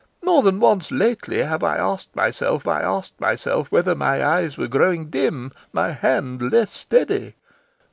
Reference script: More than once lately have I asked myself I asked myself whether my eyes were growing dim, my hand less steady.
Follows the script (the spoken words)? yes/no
yes